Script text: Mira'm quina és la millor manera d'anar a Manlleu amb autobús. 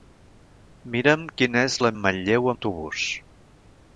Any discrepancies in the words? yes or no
yes